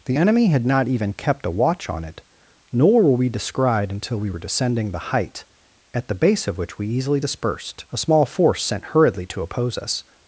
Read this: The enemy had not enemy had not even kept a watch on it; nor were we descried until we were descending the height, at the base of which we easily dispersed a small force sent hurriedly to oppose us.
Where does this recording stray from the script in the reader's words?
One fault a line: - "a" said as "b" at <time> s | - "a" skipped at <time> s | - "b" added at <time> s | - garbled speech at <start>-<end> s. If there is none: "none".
- "enemy had not" skipped at 0.9 s